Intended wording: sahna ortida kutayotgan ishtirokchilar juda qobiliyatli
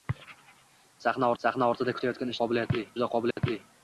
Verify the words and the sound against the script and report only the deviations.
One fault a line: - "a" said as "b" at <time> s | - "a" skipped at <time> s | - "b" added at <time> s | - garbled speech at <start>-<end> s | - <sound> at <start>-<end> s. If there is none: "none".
- "sahna" added at 1.4 s
- "ishtirokchilar" said as "qobiliyatli" at 2.4 s
- dropout at 3.3-3.4 s